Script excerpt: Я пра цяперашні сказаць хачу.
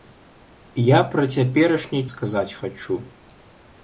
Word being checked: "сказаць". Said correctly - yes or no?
yes